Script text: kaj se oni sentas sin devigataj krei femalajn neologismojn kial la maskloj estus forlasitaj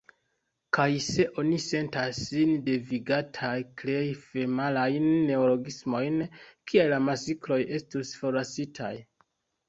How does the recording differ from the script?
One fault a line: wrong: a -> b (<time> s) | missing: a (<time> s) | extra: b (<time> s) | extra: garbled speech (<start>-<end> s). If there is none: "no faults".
no faults